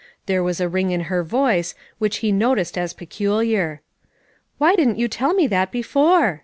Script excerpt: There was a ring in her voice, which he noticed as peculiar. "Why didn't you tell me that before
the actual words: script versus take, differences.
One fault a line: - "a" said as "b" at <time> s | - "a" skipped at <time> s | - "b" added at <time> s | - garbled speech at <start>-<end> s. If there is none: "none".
none